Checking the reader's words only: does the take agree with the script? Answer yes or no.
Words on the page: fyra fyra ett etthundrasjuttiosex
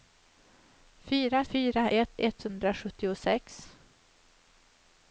yes